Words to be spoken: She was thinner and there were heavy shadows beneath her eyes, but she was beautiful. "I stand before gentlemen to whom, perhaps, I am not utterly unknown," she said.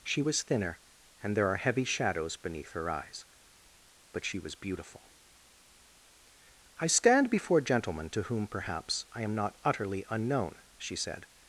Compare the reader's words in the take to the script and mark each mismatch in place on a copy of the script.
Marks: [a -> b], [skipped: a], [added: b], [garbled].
She was thinner and there [were -> are] heavy shadows beneath her eyes, but she was beautiful. "I stand before gentlemen to whom, perhaps, I am not utterly unknown," she said.